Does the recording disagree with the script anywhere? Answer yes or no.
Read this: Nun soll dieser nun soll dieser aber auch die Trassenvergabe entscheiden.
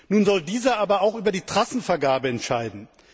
yes